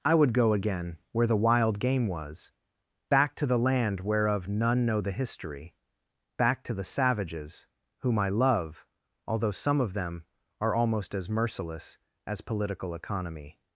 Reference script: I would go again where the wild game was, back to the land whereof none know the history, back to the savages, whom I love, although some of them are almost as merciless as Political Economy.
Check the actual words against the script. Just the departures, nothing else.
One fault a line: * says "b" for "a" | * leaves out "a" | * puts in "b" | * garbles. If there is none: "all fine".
all fine